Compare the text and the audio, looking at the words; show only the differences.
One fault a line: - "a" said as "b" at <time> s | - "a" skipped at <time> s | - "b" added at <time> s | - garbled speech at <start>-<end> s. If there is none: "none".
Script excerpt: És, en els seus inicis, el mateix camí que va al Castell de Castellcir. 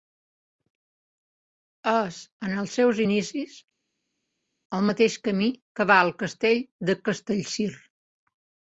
none